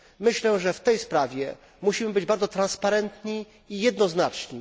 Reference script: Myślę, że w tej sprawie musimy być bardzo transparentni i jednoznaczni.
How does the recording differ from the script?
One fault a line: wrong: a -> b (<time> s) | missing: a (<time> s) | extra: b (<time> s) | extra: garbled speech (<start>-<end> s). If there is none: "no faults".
no faults